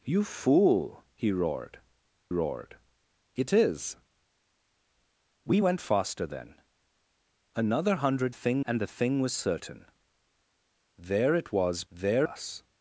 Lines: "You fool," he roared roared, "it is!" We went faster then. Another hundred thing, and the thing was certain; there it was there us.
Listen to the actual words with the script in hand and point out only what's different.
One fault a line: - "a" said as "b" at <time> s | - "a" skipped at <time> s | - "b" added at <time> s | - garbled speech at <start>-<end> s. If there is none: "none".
none